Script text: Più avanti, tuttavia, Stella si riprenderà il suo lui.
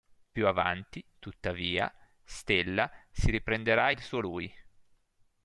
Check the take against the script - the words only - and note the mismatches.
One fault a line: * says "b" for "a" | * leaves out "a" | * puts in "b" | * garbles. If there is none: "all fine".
all fine